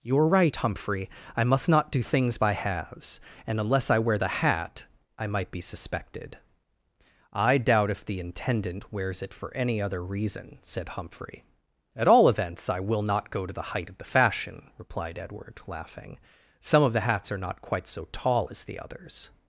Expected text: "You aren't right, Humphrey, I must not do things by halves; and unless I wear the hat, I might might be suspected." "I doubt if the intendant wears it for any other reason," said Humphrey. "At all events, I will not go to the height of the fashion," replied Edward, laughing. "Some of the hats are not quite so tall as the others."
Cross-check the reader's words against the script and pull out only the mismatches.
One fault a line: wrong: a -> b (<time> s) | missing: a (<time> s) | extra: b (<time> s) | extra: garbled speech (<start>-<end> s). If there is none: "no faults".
wrong: aren't -> are (0.2 s)
missing: might (5.5 s)